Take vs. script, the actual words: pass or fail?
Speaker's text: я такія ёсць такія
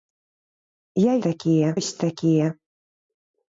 pass